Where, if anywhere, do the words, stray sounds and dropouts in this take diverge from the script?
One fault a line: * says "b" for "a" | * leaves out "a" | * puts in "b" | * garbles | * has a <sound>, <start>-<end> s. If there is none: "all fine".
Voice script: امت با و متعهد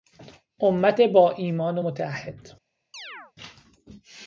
* puts in "ایمان"
* has a chirp, 2.9-3.3 s